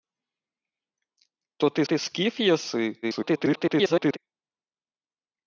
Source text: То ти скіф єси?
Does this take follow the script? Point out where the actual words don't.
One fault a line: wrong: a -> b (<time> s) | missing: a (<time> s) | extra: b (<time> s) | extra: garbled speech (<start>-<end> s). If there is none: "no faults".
extra: ти (1.8 s)
extra: garbled speech (3.0-4.2 s)